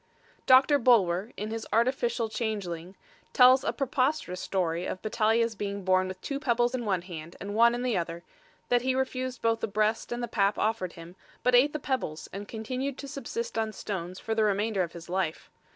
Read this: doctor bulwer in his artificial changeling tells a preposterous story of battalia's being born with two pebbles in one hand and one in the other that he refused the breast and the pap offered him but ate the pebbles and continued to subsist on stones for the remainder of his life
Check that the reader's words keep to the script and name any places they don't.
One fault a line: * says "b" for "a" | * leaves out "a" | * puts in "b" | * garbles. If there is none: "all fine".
* puts in "both"